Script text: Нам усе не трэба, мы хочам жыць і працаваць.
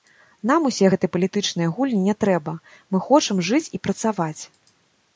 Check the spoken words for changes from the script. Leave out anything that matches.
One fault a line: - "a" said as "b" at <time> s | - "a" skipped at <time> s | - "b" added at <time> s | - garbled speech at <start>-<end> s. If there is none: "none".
- "гэтыя палітычныя гульні" added at 0.9 s